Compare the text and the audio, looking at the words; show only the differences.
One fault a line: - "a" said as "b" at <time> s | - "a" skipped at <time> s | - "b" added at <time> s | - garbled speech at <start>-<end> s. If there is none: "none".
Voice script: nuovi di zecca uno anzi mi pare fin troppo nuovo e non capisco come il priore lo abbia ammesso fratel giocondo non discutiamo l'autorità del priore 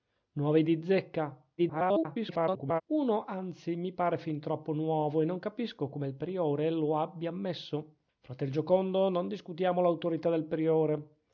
- garbled speech at 1.6-2.8 s